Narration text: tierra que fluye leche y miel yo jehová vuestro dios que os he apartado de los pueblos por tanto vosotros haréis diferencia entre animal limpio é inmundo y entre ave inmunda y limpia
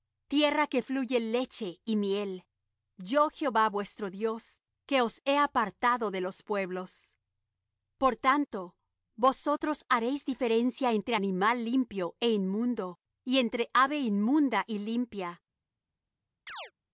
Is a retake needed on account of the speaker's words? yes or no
no